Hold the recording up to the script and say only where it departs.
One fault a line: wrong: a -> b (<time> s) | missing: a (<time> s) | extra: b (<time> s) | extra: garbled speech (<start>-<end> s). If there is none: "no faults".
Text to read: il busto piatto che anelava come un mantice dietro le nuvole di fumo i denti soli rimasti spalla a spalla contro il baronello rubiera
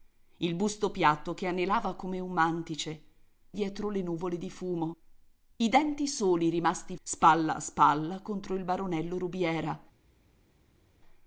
no faults